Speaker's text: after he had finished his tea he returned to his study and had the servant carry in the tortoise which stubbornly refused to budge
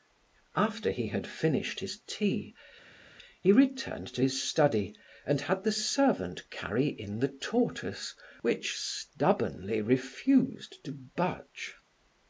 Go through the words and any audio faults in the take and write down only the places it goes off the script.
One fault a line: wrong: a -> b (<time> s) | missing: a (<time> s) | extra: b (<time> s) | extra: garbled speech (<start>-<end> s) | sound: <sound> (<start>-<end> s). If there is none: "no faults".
no faults